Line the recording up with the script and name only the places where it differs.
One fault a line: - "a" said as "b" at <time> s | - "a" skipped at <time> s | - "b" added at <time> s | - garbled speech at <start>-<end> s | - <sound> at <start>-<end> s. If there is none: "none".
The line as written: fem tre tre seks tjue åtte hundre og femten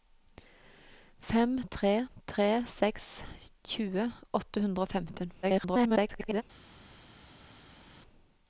- garbled speech at 5.4-6.4 s